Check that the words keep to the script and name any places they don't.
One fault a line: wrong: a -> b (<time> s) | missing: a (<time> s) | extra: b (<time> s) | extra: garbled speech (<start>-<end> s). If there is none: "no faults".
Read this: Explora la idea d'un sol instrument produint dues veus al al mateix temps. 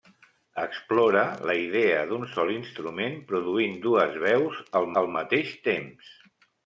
no faults